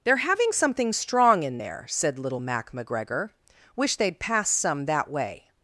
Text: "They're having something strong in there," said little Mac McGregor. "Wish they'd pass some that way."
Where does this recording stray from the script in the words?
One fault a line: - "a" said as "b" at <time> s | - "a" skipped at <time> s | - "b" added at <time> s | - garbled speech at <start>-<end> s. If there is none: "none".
none